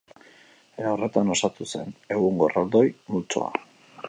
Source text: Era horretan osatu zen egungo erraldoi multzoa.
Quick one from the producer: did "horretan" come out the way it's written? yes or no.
yes